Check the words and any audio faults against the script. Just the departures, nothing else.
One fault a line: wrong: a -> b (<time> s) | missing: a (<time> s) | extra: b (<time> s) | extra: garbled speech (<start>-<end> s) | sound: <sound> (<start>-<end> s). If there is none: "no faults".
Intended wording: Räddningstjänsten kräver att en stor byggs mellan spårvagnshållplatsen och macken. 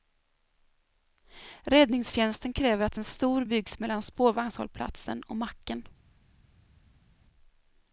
no faults